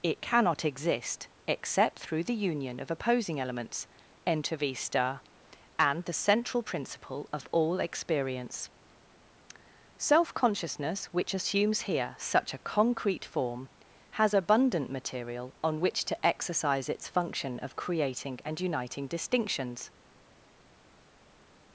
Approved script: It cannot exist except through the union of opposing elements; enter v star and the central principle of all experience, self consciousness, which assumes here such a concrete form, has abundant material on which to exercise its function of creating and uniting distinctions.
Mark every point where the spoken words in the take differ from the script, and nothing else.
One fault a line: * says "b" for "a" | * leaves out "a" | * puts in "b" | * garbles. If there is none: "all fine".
all fine